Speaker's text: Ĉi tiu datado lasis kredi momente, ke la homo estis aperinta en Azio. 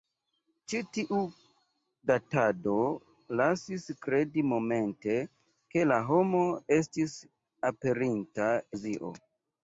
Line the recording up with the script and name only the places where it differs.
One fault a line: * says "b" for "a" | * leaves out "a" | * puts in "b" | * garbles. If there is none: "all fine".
* leaves out "en"